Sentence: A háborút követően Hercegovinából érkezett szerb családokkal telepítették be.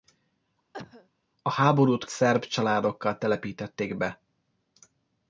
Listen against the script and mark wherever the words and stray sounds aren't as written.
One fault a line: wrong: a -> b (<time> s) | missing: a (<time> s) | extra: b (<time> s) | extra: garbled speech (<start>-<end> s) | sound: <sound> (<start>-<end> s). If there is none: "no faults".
sound: cough (0.7-1.1 s)
missing: követően Hercegovinából érkezett (2.1 s)